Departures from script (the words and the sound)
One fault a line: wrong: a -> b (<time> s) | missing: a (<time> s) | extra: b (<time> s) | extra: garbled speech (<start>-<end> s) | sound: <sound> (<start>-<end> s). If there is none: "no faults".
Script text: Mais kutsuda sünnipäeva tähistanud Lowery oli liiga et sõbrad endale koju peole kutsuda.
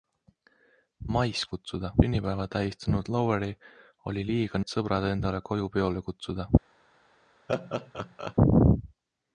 sound: laugh (7.5-8.3 s)